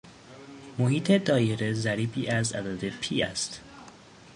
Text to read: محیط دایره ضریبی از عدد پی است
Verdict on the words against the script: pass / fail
pass